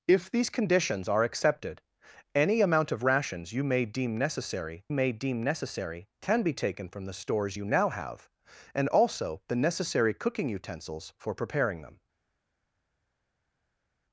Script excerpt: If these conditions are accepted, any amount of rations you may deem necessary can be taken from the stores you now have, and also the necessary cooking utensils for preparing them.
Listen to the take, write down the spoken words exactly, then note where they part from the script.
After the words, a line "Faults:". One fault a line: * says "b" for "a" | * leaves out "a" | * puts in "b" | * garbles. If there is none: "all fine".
If these conditions are accepted, any amount of rations you may deem necessary may deem necessary can be taken from the stores you now have, and also the necessary cooking utensils for preparing them.
Faults:
* puts in "may deem necessary"